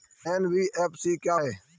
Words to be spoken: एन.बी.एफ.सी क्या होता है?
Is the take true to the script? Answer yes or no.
no